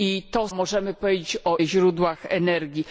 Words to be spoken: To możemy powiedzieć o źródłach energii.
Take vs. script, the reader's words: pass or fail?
pass